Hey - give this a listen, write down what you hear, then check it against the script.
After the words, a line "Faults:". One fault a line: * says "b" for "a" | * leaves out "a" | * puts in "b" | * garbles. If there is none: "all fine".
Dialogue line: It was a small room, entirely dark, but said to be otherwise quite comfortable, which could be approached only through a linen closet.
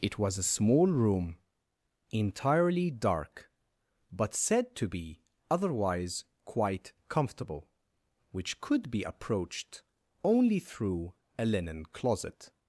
It was a small room, entirely dark, but said to be otherwise quite comfortable, which could be approached only through a linen closet.
Faults:
all fine